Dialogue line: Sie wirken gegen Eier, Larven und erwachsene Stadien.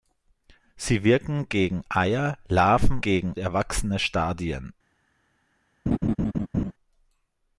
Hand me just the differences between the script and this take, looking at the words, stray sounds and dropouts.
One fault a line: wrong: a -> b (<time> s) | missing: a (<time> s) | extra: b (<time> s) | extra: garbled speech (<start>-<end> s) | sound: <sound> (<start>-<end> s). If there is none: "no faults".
wrong: und -> gegen (3.0 s)
sound: laugh (5.9-6.7 s)